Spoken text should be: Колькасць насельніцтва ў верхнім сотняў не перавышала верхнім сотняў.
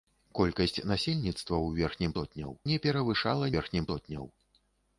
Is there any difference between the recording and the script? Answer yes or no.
no